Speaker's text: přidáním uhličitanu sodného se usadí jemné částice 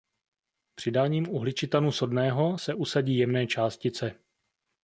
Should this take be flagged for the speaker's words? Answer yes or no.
no